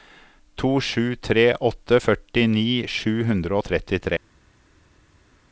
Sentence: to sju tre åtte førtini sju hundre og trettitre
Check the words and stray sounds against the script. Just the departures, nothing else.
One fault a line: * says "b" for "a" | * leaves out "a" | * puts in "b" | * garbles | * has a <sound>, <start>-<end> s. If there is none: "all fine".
all fine